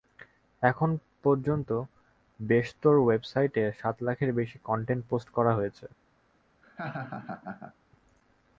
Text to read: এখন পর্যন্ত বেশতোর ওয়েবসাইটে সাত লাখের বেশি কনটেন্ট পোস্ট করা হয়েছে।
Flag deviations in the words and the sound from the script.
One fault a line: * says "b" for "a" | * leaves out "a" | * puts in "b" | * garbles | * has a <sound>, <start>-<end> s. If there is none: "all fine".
* has a laugh, 6.6-7.7 s